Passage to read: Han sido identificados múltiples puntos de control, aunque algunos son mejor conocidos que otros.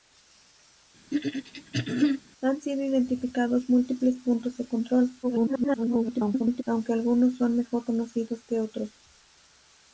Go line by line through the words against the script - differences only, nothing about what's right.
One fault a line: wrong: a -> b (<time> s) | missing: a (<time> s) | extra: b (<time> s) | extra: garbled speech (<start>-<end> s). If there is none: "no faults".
extra: garbled speech (5.2-6.6 s)